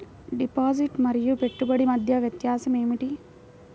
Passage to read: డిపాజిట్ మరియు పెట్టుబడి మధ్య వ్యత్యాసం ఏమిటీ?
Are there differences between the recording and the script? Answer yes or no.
no